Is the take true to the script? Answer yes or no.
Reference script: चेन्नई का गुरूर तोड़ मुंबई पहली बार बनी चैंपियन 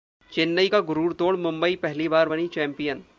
yes